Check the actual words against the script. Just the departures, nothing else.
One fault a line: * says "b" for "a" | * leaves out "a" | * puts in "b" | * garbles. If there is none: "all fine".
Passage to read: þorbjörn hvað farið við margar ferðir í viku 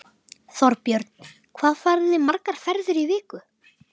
* says "þið" for "við"